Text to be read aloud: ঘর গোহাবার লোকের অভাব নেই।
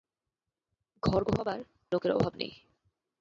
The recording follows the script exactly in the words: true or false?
true